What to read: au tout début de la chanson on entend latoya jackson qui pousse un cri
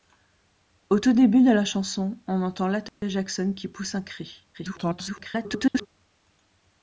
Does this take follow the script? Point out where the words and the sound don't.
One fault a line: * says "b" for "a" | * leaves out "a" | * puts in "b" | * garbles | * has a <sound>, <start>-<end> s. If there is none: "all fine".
* has a dropout, 2.9-3.0 s
* garbles